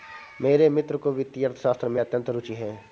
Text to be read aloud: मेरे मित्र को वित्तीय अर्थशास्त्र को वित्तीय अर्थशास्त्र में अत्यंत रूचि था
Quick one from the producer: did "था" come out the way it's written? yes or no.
no